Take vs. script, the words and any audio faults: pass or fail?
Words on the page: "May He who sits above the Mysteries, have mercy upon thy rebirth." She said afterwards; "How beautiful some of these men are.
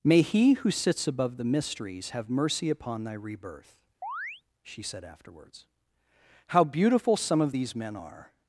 fail